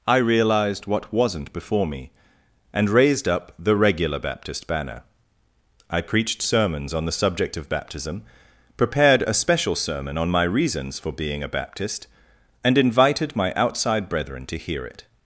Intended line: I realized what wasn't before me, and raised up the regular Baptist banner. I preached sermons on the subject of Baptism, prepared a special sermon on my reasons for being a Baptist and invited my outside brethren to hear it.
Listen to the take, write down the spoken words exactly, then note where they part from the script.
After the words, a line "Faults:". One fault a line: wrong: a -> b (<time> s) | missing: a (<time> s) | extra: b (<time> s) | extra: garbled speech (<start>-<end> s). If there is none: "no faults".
I realized what wasn't before me, and raised up the regular Baptist banner. I preached sermons on the subject of Baptism, prepared a special sermon on my reasons for being a Baptist and invited my outside brethren to hear it.
Faults:
no faults